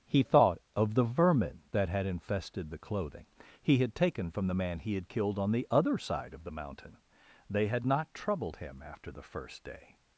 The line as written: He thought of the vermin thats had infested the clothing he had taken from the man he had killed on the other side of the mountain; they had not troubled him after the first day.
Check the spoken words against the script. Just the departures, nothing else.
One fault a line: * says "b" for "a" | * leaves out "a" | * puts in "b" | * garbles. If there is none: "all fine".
* says "that" for "thats"